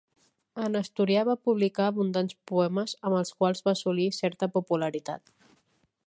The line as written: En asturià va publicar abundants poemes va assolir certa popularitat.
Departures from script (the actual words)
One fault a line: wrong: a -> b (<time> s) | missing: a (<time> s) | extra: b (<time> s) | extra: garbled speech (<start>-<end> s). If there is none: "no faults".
extra: amb els quals (3.1 s)